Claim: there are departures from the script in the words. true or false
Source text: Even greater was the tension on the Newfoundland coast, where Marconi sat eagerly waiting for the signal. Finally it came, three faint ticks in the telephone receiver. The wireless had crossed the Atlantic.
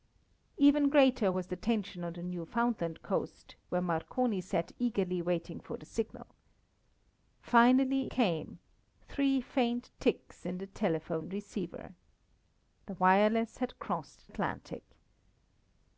true